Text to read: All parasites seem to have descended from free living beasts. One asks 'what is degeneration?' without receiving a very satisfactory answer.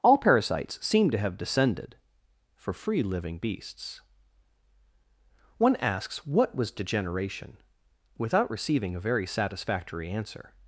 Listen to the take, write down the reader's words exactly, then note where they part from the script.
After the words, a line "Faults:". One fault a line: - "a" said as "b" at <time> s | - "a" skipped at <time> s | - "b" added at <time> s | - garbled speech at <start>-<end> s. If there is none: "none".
All parasites seem to have descended for free living beasts. One asks 'what was degeneration?' without receiving a very satisfactory answer.
Faults:
- "from" said as "for" at 2.5 s
- "is" said as "was" at 6.5 s